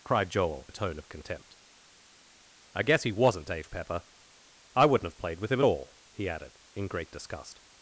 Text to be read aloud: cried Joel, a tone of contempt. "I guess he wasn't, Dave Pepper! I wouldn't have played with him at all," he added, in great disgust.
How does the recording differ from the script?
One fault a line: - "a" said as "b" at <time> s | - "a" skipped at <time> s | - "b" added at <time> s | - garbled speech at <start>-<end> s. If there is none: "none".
none